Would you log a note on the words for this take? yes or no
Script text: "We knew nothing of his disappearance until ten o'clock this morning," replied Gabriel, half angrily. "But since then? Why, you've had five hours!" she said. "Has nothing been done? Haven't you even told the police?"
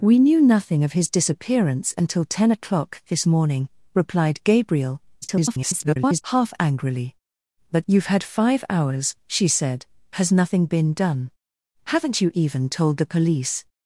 yes